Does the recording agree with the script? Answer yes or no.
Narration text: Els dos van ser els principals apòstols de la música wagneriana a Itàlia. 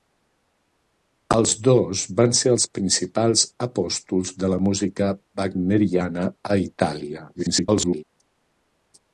no